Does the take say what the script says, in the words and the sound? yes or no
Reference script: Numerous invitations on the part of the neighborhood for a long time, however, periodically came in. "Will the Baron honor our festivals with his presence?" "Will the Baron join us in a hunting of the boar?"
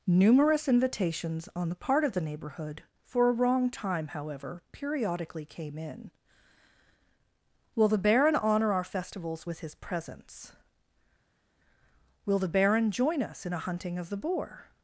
no